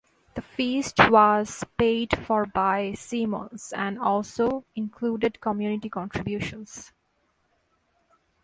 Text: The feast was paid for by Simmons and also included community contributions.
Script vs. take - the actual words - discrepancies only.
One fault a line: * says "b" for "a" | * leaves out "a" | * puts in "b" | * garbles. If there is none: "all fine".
all fine